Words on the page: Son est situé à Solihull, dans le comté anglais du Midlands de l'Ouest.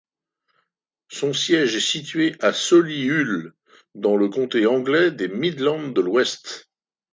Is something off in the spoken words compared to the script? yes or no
yes